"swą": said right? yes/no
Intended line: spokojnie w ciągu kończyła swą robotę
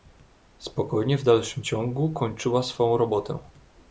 yes